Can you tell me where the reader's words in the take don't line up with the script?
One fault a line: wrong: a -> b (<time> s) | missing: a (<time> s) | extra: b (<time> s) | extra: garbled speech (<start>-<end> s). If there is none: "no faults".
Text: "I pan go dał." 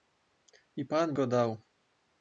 no faults